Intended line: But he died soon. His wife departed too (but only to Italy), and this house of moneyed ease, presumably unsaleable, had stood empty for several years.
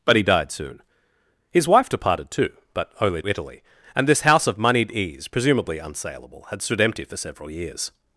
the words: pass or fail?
fail